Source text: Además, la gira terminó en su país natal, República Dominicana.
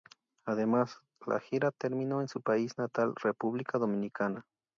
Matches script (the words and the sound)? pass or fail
pass